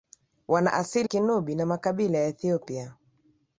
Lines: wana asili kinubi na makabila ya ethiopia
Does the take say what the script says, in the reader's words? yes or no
yes